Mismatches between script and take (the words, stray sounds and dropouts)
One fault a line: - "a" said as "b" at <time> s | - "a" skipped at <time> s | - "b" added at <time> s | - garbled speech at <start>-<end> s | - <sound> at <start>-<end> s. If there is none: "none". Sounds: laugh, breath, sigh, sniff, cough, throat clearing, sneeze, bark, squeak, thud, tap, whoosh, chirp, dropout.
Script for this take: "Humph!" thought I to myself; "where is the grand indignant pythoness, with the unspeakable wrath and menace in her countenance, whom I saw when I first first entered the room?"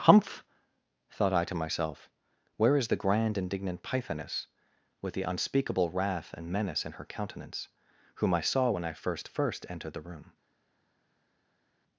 none